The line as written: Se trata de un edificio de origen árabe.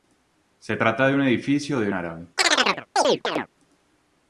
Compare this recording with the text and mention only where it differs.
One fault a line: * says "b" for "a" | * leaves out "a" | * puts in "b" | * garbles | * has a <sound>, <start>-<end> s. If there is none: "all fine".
* leaves out "origen"
* has a chirp, 2.4-3.5 s